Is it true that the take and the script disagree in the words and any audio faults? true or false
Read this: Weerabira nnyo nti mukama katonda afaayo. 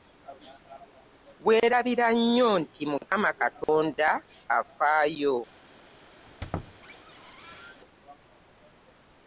true